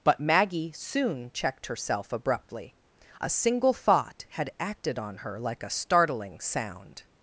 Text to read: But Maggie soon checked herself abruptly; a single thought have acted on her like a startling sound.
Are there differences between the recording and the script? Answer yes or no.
yes